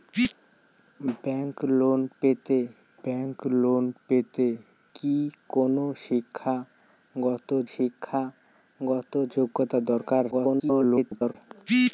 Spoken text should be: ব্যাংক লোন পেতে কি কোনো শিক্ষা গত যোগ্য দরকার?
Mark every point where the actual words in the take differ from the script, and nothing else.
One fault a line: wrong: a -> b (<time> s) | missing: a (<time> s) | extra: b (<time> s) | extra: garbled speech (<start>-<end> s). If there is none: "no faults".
extra: ব্যাংক লোন পেতে (3.0 s)
extra: শিক্ষা গত (7.7 s)
extra: garbled speech (10.3-11.4 s)